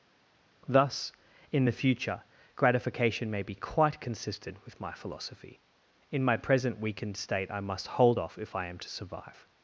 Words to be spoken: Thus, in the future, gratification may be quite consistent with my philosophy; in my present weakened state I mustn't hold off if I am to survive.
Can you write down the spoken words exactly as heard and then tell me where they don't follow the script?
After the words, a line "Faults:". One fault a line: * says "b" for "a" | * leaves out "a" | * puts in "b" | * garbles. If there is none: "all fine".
Thus, in the future, gratification may be quite consistent with my philosophy; in my present weakened state I must hold off if I am to survive.
Faults:
* says "must" for "mustn't"